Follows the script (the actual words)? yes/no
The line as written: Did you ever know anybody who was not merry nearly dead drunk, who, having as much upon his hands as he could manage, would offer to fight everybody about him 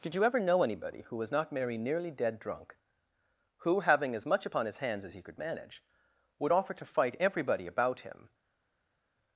yes